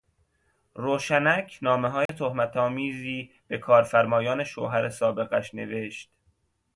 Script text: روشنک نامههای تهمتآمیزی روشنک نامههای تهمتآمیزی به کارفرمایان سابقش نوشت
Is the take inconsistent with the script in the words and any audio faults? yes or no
yes